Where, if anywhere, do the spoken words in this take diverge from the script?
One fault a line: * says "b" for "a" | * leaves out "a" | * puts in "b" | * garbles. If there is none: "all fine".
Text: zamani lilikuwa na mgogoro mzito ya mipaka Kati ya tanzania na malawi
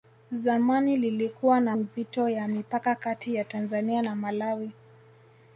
* leaves out "mgogoro"